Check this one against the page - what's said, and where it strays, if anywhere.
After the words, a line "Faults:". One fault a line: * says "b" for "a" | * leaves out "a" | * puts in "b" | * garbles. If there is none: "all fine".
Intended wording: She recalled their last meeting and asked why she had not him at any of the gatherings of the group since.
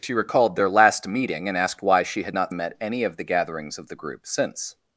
She recalled their last meeting and asked why she had not him at any of the gatherings of the group since.
Faults:
all fine